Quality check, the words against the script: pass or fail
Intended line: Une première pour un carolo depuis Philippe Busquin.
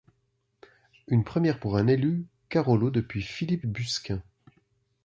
fail